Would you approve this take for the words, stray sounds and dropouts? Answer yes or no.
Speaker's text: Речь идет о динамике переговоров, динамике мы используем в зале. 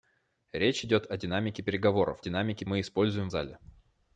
yes